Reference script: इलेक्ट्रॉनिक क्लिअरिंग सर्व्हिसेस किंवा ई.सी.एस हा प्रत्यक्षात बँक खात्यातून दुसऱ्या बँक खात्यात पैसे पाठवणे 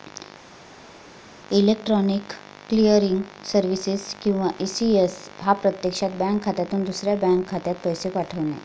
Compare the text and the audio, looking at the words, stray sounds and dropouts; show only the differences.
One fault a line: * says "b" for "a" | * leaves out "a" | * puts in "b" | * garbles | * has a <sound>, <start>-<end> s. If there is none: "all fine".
all fine